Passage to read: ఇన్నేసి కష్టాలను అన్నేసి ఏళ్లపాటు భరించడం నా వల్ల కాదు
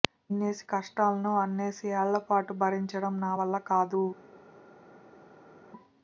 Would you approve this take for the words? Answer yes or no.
yes